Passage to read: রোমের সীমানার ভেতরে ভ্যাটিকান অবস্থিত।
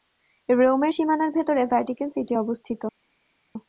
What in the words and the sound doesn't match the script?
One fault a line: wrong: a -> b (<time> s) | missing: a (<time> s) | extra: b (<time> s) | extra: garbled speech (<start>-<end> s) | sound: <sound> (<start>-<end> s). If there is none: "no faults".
extra: সিটি (2.1 s)